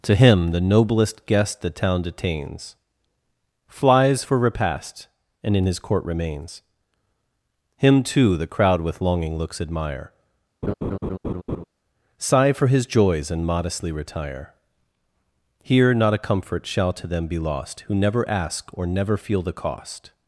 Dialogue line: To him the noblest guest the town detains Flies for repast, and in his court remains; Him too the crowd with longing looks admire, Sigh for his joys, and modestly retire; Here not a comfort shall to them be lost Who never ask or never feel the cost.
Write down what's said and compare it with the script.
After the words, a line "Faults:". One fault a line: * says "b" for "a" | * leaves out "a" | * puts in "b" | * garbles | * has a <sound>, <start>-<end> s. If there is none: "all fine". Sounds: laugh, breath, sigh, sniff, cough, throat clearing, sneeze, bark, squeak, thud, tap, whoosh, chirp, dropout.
To him the noblest guest the town detains Flies for repast, and in his court remains; Him too the crowd with longing looks admire, Sigh for his joys, and modestly retire; Here not a comfort shall to them be lost Who never ask or never feel the cost.
Faults:
* has a laugh, 10.6-11.6 s